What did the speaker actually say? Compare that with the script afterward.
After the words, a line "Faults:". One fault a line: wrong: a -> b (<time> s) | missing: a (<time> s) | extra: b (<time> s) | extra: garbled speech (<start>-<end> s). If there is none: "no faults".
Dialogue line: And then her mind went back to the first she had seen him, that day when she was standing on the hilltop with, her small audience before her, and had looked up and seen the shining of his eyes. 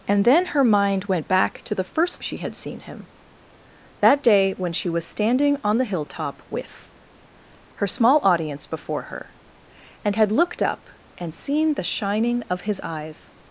And then her mind went back to the first she had seen him, that day when she was standing on the hilltop with, her small audience before her, and had looked up and seen the shining of his eyes.
Faults:
no faults